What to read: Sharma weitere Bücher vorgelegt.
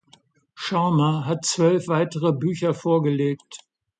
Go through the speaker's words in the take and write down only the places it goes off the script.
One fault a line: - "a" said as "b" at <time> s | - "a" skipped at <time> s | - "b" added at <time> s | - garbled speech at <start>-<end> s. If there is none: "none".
- "hat zwölf" added at 1.3 s